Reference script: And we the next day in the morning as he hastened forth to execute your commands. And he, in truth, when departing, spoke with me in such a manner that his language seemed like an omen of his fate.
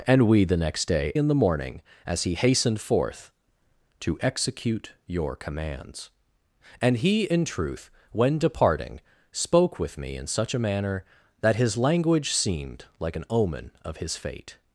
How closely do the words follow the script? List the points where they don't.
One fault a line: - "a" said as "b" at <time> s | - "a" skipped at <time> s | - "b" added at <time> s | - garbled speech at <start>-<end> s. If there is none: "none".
none